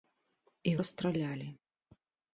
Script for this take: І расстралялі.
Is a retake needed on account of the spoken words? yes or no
no